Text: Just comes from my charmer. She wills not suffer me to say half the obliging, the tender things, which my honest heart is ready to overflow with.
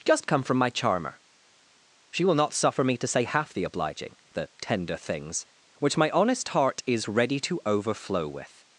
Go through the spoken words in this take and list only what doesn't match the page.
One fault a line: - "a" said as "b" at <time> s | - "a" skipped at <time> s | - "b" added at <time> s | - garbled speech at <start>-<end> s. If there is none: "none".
- "comes" said as "come" at 0.3 s
- "wills" said as "will" at 2.2 s